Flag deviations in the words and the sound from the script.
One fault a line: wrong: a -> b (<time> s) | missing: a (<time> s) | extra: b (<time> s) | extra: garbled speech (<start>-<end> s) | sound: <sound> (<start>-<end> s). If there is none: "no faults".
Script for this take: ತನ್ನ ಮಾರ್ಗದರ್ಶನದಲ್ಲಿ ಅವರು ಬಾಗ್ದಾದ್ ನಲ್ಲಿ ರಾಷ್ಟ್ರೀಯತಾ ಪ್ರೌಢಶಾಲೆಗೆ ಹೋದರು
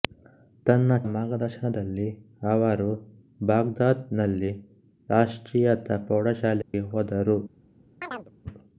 sound: dropout (6.6-6.7 s)
sound: chirp (8.0-8.3 s)